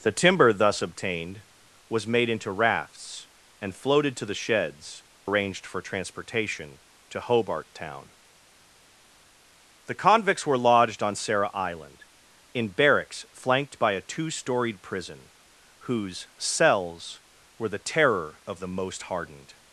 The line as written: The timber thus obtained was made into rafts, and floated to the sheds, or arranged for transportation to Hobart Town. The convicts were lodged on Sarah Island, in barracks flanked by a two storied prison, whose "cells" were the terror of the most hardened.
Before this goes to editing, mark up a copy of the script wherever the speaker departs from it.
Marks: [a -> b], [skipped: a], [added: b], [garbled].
The timber thus obtained was made into rafts, and floated to the sheds, [skipped: or] arranged for transportation to Hobart Town. The convicts were lodged on Sarah Island, in barracks flanked by a two storied prison, whose "cells" were the terror of the most hardened.